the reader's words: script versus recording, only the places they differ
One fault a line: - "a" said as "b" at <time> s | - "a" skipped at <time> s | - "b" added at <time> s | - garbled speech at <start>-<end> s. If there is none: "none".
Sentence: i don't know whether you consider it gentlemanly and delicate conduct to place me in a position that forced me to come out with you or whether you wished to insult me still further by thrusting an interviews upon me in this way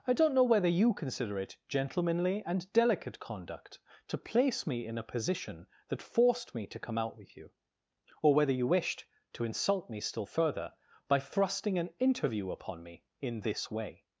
- "interviews" said as "interview" at 12.0 s